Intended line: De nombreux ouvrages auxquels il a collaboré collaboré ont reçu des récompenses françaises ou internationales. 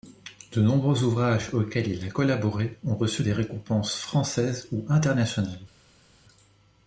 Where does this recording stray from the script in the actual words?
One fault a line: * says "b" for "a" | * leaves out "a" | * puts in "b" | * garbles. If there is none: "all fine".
* leaves out "collaboré"